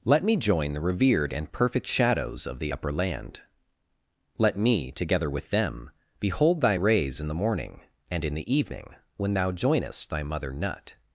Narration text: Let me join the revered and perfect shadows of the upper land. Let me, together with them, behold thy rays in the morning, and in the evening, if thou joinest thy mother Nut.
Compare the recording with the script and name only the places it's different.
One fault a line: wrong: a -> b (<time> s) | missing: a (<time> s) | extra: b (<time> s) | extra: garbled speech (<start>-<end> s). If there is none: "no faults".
wrong: if -> when (9.2 s)